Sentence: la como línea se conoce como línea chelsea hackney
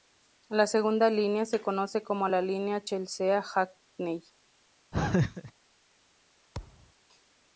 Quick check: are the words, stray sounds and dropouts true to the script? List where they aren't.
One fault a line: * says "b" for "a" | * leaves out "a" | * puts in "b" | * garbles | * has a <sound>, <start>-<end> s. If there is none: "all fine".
* says "segunda" for "como"
* puts in "la"
* has a laugh, 4.9-5.5 s
* has a thud, 6.5-6.9 s